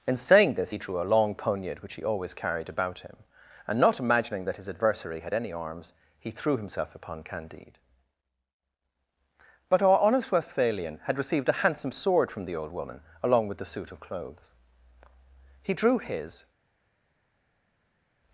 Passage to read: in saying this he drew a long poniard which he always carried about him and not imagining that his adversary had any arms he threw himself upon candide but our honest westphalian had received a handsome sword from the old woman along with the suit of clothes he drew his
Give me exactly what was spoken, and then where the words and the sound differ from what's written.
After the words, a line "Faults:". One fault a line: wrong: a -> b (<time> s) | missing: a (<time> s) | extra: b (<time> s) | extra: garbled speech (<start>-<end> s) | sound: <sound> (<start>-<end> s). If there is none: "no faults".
in saying this he drew a long poniard which he always carried about him and not imagining that his adversary had any arms he threw himself upon candide but our honest westphalian had received a handsome sword from the old woman along with the suit of clothes he drew his
Faults:
no faults